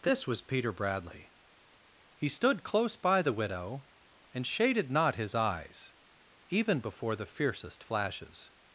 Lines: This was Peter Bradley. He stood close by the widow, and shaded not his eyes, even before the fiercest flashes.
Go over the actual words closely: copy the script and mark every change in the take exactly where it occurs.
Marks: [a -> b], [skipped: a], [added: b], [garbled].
This was Peter Bradley. He stood close by the widow, and shaded not his eyes, even before the fiercest flashes.